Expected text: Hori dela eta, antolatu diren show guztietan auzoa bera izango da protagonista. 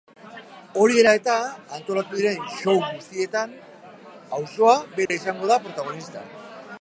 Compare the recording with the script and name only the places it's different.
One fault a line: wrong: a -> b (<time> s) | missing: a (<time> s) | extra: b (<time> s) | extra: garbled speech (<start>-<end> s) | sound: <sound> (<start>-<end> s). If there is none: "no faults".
sound: dropout (5.1-5.1 s)